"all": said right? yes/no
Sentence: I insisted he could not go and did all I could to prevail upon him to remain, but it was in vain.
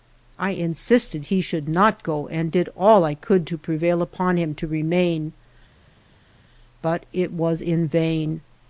yes